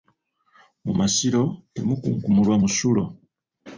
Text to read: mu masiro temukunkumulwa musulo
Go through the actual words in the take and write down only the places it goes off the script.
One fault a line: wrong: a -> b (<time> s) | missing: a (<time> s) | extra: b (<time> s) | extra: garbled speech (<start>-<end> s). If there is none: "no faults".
no faults